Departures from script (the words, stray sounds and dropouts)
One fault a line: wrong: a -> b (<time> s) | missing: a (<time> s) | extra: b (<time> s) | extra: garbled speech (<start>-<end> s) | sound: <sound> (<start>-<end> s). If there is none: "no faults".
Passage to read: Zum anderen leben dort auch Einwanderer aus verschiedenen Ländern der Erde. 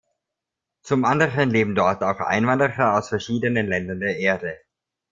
no faults